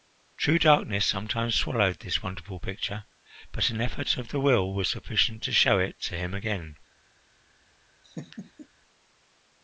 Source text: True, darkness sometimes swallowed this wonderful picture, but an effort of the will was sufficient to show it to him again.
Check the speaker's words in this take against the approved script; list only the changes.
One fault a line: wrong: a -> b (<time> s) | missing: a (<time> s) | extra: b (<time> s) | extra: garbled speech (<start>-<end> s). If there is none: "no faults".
no faults